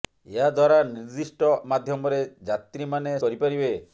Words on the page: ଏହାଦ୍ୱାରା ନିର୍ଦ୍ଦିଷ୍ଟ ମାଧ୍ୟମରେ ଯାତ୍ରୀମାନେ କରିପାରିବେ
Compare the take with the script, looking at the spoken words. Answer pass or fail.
pass